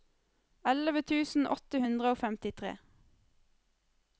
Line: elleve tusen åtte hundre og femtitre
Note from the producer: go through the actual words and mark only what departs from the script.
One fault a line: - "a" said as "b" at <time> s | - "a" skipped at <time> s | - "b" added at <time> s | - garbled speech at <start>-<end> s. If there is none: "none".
none